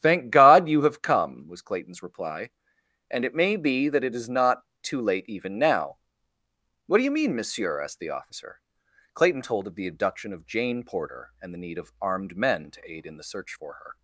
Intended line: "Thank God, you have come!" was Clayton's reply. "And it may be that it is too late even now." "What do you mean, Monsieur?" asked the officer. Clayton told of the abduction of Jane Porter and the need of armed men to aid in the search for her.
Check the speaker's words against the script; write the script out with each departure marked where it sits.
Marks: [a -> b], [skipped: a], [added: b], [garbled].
"Thank God, you have come!" was Clayton's reply. "And it may be that it is [added: not] too late even now." "What do you mean, Monsieur?" asked the officer. Clayton told of the abduction of Jane Porter and the need of armed men to aid in the search for her.